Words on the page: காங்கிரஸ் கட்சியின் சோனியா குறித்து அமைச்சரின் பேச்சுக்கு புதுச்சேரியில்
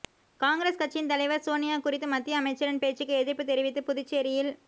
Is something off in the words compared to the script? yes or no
yes